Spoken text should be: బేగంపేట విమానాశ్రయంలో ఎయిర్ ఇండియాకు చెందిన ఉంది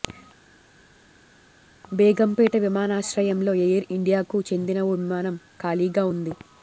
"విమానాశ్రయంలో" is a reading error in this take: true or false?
false